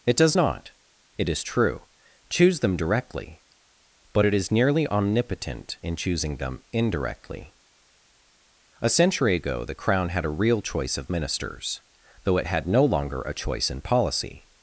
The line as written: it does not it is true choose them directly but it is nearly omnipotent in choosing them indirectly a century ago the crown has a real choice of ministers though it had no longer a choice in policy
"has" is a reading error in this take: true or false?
true